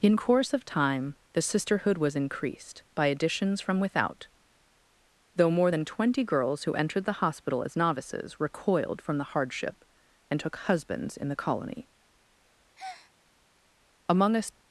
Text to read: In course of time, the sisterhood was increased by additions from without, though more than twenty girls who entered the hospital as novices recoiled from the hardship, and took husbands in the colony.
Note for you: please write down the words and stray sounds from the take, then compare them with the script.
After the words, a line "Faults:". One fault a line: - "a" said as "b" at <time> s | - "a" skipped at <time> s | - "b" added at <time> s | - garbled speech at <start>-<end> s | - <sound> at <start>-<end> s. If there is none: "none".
In course of time, the sisterhood was increased by additions from without, though more than twenty girls who entered the hospital as novices recoiled from the hardship, and took husbands in the colony. Among a
Faults:
- breath at 12.8-13.1 s
- "Among a" added at 14.1 s